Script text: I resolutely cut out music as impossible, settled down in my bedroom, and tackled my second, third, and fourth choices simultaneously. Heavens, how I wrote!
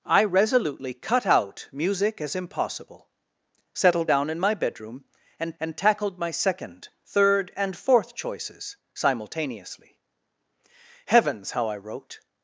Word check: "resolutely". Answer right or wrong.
right